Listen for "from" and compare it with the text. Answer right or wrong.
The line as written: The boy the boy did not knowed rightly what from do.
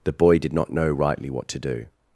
wrong